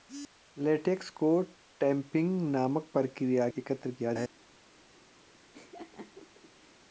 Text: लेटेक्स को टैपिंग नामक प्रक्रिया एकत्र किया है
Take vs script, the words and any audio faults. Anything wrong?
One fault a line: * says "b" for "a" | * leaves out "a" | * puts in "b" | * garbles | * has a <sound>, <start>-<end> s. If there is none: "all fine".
* has a laugh, 5.5-6.8 s